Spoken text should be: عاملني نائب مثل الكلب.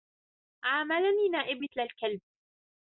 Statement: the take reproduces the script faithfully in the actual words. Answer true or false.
true